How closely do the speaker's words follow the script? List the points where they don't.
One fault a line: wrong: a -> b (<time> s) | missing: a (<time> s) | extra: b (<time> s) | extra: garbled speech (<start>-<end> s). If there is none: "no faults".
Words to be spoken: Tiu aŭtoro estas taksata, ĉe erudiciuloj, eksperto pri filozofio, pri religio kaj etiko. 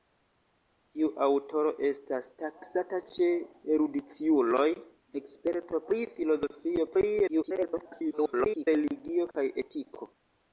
extra: garbled speech (7.3-8.7 s)